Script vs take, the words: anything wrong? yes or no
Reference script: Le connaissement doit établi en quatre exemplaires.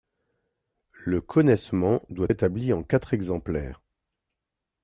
no